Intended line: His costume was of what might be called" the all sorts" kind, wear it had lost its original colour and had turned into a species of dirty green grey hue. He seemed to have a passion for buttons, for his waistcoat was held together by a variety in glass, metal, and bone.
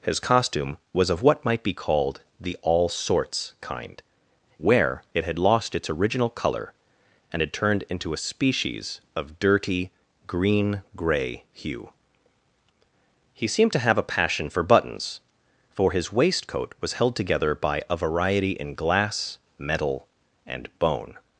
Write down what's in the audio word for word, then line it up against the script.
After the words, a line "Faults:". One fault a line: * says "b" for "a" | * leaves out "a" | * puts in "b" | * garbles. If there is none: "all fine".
His costume was of what might be called" the all sorts" kind, wear it had lost its original colour and had turned into a species of dirty green grey hue. He seemed to have a passion for buttons, for his waistcoat was held together by a variety in glass, metal, and bone.
Faults:
all fine